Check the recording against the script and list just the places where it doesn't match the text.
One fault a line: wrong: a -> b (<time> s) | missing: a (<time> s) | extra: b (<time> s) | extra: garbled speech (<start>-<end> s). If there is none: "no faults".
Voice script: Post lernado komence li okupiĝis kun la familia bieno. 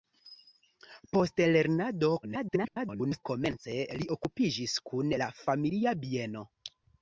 extra: garbled speech (2.2-3.2 s)